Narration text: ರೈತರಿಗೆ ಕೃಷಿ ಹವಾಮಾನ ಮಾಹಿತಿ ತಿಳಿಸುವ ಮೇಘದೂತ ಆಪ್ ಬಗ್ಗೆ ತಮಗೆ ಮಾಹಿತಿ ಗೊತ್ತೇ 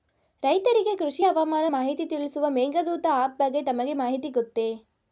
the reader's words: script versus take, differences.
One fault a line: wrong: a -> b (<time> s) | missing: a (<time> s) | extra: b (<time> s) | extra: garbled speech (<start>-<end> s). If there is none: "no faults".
no faults